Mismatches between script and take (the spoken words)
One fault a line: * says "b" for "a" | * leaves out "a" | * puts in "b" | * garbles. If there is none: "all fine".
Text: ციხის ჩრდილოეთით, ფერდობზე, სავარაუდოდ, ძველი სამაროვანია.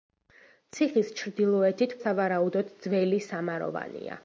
* leaves out "ფერდობზე"